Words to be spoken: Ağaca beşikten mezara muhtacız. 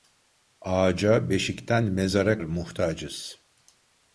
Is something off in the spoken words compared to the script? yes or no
no